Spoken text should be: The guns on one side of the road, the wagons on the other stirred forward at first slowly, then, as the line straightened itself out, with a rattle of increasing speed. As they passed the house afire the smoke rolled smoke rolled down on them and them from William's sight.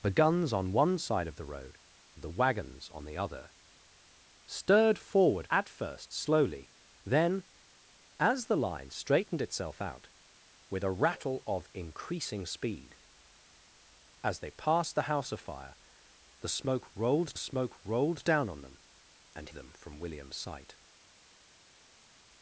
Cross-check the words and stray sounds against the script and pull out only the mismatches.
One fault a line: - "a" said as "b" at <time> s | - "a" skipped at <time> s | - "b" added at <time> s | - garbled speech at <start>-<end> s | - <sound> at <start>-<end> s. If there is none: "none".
none